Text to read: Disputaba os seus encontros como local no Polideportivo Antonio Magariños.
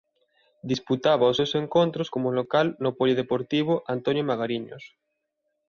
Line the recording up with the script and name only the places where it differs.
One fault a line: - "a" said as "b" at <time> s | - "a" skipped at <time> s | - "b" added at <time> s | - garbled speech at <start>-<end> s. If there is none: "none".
none